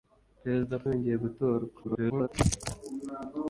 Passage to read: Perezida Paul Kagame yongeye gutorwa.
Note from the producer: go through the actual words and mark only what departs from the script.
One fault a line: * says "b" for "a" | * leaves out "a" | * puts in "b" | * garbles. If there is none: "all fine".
* leaves out "Paul Kagame"
* garbles